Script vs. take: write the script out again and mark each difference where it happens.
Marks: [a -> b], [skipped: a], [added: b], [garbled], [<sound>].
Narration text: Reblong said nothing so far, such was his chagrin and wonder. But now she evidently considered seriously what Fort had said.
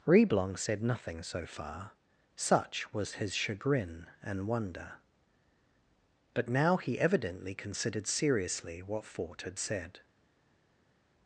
Reblong said nothing so far, such was his chagrin and wonder. But now [she -> he] evidently considered seriously what Fort had said.